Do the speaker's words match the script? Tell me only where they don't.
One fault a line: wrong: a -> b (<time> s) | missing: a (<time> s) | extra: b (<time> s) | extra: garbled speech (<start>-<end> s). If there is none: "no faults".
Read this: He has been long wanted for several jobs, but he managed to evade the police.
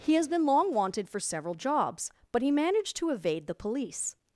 no faults